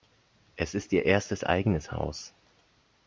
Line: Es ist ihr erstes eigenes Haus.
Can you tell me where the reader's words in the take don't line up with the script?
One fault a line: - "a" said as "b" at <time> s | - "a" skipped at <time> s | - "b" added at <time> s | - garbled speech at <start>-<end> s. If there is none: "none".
none